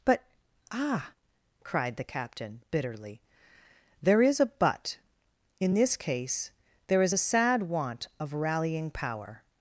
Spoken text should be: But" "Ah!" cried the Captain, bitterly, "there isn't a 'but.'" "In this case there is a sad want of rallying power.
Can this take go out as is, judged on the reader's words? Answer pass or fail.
fail